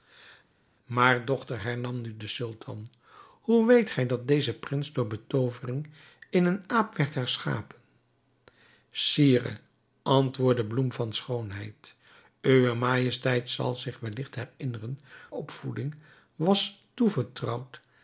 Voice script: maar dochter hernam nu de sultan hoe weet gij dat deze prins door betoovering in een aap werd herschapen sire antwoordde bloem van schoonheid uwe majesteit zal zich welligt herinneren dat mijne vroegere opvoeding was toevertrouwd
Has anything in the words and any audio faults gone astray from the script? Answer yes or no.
yes